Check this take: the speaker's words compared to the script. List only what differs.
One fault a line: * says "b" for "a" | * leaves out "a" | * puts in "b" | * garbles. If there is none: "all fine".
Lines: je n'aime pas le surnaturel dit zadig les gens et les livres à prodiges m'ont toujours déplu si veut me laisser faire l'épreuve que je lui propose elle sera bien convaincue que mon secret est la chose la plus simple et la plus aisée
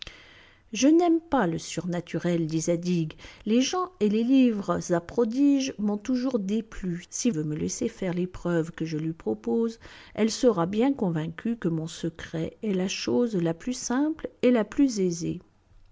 all fine